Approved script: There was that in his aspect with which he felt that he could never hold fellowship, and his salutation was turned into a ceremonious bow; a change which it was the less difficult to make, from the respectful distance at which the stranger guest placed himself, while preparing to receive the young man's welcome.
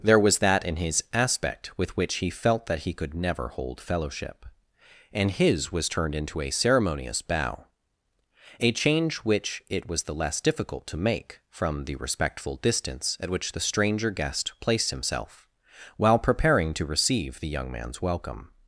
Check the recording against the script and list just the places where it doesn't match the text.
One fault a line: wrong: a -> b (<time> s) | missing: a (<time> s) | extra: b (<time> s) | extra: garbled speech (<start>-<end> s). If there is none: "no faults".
missing: salutation (5.7 s)